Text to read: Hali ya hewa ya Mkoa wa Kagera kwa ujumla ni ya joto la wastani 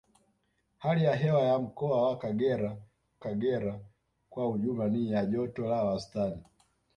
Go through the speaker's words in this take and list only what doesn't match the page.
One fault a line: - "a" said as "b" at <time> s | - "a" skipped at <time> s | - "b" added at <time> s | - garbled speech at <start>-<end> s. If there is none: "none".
- "Kagera" added at 3.2 s